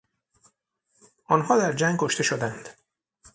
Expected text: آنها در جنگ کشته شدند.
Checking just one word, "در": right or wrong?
right